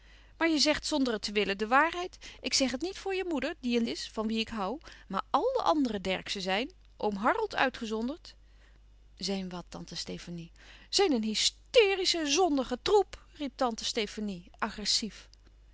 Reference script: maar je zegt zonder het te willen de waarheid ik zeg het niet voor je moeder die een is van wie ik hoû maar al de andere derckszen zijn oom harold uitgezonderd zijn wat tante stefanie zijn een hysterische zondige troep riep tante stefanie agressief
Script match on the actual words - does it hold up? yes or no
yes